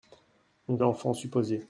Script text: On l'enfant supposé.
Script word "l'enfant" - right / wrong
right